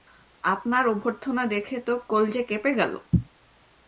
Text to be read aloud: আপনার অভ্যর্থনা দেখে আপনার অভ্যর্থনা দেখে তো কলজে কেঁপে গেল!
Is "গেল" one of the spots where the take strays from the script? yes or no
no